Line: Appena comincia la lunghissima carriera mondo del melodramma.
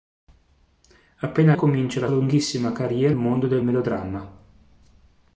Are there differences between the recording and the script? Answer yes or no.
no